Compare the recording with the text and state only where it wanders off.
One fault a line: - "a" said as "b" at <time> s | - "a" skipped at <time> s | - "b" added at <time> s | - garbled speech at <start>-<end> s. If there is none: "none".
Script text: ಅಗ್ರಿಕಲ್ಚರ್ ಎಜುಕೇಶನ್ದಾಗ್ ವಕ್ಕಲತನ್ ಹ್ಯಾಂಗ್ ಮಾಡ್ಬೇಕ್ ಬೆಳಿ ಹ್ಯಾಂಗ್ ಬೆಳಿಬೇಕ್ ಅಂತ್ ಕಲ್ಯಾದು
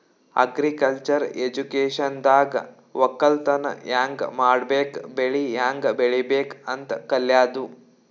none